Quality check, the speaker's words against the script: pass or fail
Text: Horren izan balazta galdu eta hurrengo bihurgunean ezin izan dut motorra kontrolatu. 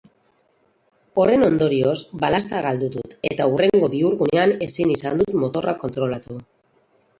fail